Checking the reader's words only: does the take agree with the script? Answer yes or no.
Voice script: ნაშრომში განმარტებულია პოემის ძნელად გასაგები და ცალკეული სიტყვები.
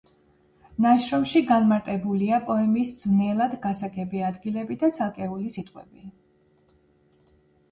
no